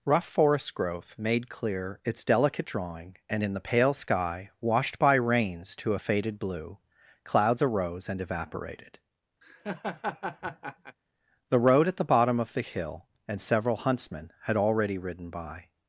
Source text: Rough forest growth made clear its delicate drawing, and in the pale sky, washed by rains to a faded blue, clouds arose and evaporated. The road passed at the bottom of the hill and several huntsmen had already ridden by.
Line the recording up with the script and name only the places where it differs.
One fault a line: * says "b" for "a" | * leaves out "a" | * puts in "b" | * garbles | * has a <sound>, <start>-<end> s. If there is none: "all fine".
* has a laugh, 9.4-11.0 s
* leaves out "passed"